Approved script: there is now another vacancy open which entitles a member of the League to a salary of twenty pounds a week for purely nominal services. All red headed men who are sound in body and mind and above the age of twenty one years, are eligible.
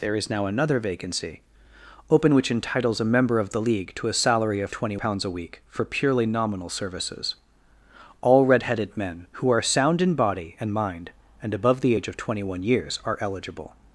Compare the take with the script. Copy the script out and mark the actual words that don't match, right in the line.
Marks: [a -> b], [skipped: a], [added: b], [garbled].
there is now another vacancy open which entitles a member of the League to a salary of twenty pounds a week for purely nominal services. All red headed men who are sound in body and mind and above the age of twenty one years, are eligible.